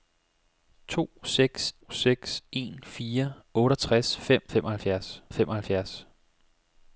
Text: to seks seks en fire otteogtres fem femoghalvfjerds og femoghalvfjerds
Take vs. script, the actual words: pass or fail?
pass